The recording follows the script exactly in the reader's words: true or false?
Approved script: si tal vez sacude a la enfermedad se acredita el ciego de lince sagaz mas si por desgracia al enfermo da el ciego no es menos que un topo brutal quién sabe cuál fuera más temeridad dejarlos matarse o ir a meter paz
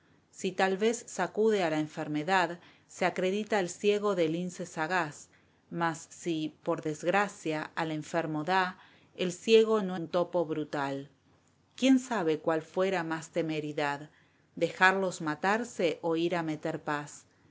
false